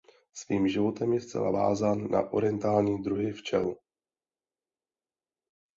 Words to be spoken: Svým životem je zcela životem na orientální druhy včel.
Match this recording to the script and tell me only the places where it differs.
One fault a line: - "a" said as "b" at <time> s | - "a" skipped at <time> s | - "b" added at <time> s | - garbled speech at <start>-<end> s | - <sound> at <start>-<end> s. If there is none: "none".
- "životem" said as "vázán" at 1.5 s